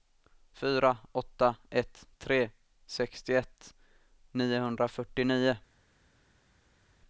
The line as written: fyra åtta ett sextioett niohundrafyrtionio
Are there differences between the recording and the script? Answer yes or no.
yes